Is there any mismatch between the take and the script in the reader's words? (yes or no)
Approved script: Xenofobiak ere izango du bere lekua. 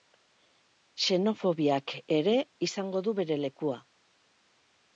no